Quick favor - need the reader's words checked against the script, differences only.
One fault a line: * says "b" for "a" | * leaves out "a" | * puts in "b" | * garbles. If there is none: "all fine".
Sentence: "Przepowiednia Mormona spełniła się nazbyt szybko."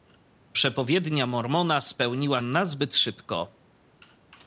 * leaves out "się"